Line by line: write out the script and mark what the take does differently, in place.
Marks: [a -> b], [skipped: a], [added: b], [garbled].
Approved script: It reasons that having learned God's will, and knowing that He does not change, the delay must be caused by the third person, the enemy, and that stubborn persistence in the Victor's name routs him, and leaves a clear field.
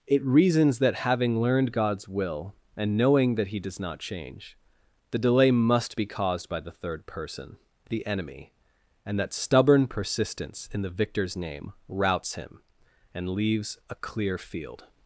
It reasons that having learned God's will, and knowing that He does not change, the delay must be caused by the third person, the enemy, and that stubborn persistence in the Victor's name routs him, and leaves a clear field.